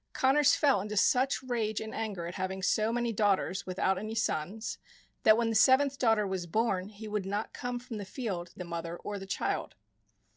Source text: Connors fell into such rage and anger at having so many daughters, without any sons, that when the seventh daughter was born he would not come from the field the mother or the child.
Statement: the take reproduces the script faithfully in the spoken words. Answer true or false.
true